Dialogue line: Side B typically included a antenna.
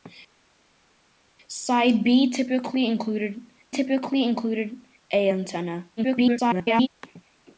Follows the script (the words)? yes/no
no